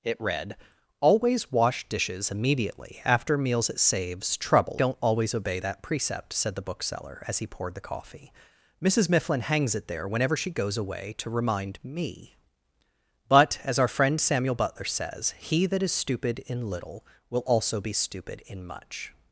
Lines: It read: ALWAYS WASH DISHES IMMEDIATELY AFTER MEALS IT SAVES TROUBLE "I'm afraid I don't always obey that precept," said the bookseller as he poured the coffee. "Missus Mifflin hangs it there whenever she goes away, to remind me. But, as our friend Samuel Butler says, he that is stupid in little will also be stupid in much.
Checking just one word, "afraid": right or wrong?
wrong